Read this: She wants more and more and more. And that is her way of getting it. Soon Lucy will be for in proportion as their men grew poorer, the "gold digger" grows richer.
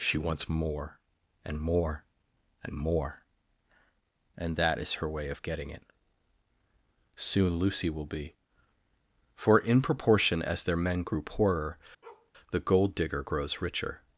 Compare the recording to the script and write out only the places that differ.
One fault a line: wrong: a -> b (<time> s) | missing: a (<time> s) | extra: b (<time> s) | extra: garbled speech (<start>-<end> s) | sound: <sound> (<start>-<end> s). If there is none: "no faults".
sound: bark (12.0-12.3 s)